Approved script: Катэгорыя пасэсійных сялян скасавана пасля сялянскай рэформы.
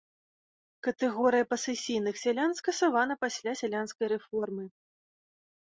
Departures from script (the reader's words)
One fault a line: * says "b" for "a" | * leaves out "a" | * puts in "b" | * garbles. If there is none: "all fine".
all fine